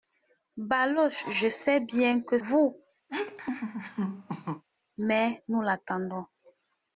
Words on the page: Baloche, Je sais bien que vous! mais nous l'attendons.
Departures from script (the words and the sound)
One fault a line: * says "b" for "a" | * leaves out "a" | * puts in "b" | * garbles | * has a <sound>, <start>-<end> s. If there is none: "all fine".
* has a laugh, 3.1-4.6 s